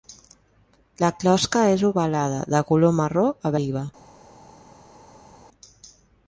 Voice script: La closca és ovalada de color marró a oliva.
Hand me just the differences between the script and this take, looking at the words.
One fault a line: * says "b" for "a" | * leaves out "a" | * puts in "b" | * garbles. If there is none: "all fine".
all fine